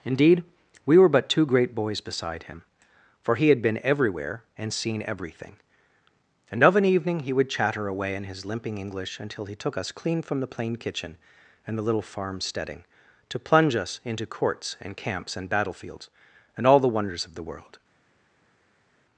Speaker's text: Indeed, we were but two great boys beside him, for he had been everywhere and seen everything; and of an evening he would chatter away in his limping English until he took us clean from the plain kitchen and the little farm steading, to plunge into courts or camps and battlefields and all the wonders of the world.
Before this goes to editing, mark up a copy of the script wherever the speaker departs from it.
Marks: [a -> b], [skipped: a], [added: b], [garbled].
Indeed, we were but two great boys beside him, for he had been everywhere and seen everything; and of an evening he would chatter away in his limping English until he took us clean from the plain kitchen and the little farm steading, to plunge [added: us] into courts [or -> and] camps and battlefields and all the wonders of the world.